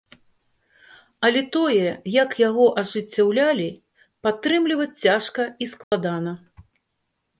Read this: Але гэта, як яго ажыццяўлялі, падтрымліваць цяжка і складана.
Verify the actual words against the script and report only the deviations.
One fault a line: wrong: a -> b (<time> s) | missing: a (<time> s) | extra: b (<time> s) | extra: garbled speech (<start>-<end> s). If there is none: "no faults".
wrong: гэта -> тое (1.6 s)